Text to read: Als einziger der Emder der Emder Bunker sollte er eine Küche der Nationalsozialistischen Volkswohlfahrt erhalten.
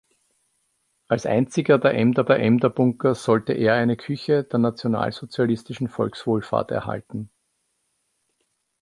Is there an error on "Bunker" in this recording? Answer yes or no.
no